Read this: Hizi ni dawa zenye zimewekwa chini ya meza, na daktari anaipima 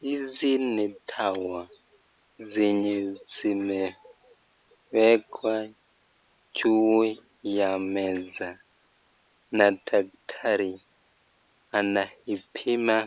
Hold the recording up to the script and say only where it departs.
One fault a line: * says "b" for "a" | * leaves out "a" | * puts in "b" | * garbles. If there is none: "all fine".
* says "juu" for "chini"